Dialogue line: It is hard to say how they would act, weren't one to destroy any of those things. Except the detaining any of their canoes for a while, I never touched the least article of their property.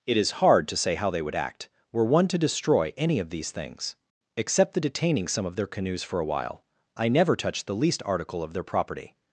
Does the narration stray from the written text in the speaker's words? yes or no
yes